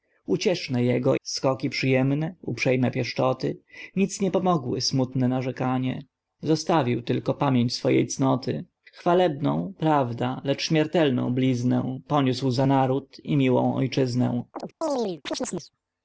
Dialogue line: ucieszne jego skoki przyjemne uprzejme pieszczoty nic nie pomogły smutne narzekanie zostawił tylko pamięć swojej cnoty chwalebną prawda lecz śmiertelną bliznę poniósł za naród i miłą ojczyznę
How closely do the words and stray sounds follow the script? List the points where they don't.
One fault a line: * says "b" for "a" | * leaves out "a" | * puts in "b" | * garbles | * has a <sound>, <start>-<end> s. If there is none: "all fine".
* has a chirp, 14.5-15.7 s